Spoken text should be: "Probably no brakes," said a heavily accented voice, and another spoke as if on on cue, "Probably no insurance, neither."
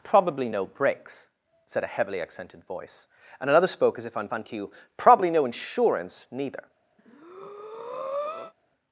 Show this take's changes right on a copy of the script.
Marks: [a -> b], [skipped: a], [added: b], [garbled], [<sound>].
"Probably no brakes," said a heavily accented voice, and another spoke as if on on cue, "Probably no insurance, neither." [breath]